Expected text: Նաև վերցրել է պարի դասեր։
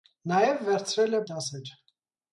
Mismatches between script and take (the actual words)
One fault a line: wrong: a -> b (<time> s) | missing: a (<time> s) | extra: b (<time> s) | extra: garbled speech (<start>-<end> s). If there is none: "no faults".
missing: պարի (1.2 s)